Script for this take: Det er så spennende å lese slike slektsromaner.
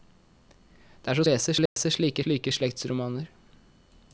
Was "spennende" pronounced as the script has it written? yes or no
no